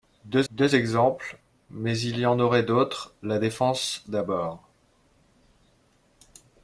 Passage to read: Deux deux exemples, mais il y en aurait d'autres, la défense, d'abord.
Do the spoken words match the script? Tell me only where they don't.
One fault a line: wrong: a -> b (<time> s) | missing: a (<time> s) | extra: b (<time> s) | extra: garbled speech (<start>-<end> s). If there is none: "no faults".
no faults